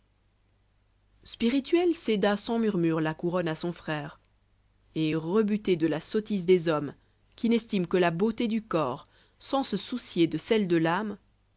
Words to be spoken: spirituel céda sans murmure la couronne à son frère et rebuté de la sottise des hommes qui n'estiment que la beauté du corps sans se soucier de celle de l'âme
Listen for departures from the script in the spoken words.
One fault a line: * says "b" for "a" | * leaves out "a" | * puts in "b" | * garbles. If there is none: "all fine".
all fine